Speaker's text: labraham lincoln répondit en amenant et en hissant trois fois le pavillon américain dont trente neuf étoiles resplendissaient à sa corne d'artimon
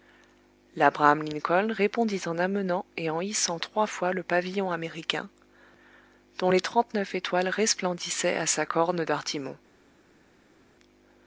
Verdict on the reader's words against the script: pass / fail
fail